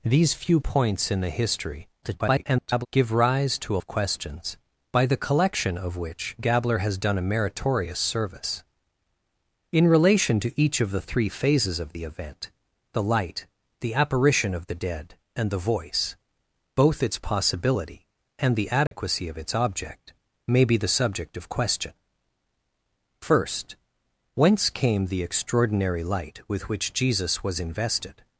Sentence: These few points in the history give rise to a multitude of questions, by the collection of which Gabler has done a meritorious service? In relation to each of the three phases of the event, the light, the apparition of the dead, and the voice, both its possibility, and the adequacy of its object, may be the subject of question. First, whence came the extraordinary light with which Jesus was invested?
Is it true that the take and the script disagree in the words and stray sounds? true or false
true